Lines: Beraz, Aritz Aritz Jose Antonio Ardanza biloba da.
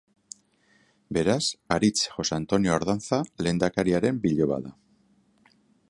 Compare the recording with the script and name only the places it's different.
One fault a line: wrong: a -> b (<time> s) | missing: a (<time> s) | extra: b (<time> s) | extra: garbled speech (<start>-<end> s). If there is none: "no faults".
missing: Aritz (2.1 s)
extra: lehendakariaren (3.5 s)